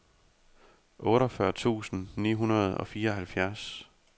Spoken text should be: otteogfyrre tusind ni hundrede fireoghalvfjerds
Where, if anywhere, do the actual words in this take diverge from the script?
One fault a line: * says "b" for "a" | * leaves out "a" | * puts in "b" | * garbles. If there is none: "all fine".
* puts in "og"